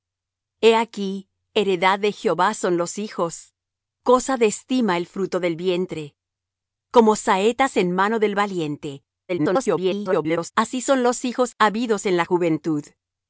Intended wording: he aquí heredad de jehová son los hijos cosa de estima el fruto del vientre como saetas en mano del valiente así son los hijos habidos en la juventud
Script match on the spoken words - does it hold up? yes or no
no